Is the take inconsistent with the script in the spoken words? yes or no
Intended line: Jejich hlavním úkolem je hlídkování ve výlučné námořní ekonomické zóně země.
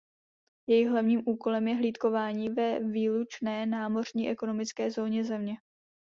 no